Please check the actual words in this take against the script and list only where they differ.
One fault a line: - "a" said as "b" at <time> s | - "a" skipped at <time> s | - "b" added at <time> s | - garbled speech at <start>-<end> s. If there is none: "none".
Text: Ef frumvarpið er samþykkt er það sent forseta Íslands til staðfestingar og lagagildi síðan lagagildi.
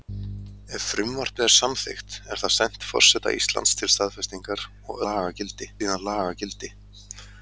none